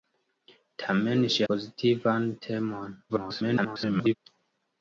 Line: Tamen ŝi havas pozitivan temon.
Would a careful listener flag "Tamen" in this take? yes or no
no